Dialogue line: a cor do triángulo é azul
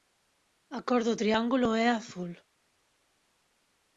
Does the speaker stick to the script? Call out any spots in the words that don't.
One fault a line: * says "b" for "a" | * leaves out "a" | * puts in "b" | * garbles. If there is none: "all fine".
all fine